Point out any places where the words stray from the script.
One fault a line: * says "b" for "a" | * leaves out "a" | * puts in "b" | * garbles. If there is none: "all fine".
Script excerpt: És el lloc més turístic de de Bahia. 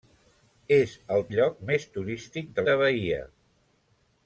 all fine